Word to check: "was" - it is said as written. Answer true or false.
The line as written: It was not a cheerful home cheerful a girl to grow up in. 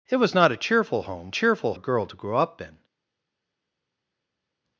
true